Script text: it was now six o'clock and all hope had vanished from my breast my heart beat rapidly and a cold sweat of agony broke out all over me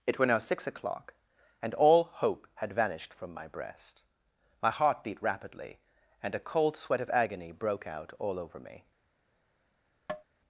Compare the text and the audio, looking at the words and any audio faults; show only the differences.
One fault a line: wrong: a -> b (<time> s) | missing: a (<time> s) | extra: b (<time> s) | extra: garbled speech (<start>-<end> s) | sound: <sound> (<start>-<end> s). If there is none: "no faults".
wrong: was -> were (0.2 s)
sound: tap (10.1-10.2 s)